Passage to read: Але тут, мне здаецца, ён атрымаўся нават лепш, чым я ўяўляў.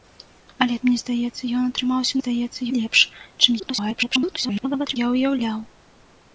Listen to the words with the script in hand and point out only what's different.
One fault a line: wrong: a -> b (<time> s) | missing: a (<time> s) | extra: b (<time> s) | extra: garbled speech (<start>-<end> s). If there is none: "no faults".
missing: тут (0.8 s)
wrong: нават -> здаецца (2.2 s)
extra: garbled speech (3.6-5.0 s)